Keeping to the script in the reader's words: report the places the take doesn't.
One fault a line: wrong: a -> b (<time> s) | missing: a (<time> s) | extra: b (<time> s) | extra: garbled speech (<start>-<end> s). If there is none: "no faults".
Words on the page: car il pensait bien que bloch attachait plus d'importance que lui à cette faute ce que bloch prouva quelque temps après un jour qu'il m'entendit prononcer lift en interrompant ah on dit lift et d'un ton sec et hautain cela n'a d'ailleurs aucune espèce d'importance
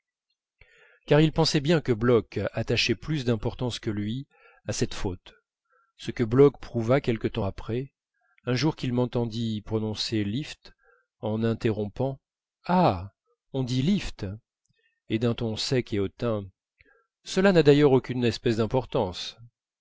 no faults